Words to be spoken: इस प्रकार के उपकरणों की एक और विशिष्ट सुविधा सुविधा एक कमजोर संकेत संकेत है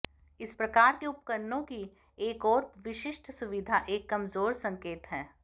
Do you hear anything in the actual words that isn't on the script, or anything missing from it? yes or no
yes